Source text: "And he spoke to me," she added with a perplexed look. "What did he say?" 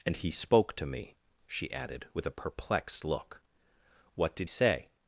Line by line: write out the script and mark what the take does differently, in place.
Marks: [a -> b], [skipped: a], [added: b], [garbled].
"And he spoke to me," she added with a perplexed look. "What did [skipped: he] say?"